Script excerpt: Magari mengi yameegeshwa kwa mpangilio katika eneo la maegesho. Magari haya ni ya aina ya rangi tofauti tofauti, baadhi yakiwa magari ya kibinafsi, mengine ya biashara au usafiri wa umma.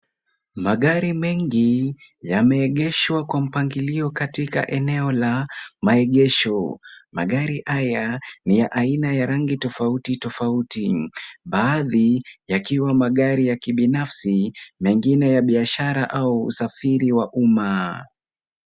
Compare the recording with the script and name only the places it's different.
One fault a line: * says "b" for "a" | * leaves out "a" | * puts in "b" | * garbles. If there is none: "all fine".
all fine